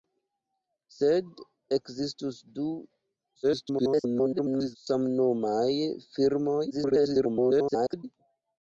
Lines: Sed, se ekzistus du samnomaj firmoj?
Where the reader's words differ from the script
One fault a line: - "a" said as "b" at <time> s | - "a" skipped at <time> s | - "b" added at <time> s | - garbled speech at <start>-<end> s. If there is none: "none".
- "se" skipped at 1.4 s
- garbled speech at 3.4-4.8 s
- garbled speech at 6.7-8.0 s